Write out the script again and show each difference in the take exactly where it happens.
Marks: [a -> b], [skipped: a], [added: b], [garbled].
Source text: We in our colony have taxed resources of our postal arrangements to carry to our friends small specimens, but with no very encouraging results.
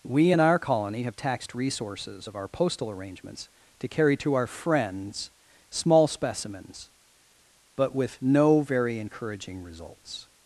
We in our colony have taxed resources of our postal arrangements to carry to our friends small specimens, but with no very encouraging results.